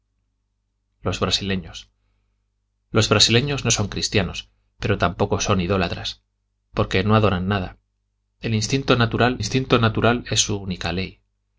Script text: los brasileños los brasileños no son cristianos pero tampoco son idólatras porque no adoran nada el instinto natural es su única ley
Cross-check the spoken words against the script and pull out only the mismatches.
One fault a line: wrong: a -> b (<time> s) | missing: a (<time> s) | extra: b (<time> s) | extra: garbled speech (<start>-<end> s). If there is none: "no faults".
extra: instinto natural (9.4 s)